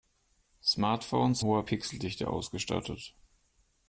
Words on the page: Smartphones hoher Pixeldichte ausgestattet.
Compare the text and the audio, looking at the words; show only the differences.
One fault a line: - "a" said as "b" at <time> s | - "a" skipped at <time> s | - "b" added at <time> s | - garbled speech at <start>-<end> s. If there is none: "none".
none